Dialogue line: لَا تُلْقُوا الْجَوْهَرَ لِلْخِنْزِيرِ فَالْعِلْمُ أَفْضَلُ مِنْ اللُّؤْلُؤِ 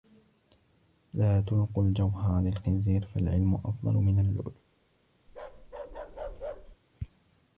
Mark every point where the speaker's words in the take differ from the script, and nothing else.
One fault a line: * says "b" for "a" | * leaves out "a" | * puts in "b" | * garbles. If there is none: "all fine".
all fine